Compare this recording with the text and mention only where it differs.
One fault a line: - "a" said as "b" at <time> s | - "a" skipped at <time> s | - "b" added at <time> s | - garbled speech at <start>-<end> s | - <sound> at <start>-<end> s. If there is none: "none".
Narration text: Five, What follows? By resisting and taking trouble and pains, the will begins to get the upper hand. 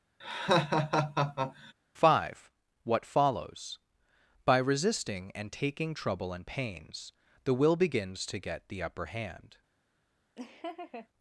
- laugh at 0.2-1.7 s
- laugh at 10.4-11.1 s